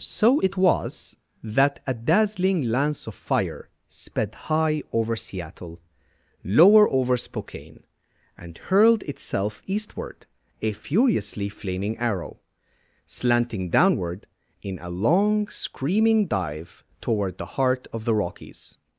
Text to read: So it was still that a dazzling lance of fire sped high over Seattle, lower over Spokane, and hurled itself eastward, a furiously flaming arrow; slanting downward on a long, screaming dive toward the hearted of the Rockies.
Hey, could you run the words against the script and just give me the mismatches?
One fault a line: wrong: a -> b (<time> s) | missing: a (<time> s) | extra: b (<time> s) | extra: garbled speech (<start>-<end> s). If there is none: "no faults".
missing: still (1.2 s)
wrong: on -> in (14.6 s)
wrong: hearted -> heart (17.6 s)